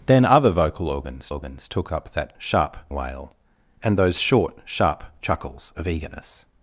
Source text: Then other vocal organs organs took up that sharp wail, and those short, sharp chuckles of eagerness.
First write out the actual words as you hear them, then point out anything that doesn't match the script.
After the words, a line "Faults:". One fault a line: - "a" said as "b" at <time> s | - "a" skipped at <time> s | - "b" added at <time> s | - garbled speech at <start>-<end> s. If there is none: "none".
Then other vocal organs organs took up that sharp wail, and those short, sharp chuckles of eagerness.
Faults:
none